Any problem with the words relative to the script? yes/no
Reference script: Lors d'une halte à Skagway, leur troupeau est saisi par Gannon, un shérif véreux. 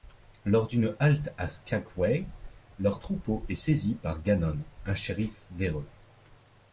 no